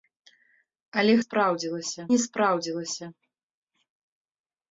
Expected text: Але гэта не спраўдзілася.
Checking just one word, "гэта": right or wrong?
wrong